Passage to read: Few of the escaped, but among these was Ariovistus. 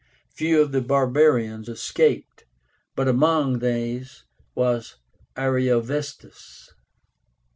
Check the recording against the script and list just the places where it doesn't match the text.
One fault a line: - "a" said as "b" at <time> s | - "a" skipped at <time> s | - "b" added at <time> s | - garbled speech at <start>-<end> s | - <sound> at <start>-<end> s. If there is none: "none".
- "barbarians" added at 0.8 s